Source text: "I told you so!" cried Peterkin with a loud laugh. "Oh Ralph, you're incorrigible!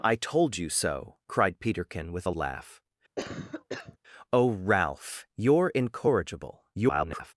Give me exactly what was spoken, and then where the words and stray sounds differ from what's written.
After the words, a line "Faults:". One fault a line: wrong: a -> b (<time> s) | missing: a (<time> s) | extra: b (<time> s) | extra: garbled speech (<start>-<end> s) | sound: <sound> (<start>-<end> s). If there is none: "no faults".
"I told you so!" cried Peterkin with a laugh. "Oh Ralph, you're incorrigible! [garbled]
Faults:
missing: loud (2.3 s)
sound: cough (3.2-4.0 s)
extra: garbled speech (6.7-7.3 s)